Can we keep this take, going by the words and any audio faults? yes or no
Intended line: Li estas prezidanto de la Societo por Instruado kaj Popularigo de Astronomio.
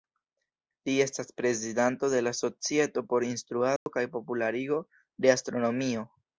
no